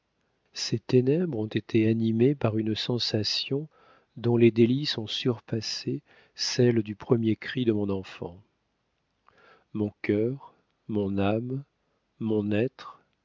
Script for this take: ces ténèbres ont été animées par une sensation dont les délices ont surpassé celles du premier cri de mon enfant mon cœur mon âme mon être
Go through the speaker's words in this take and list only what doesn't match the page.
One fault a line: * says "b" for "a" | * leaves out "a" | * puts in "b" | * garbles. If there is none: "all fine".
all fine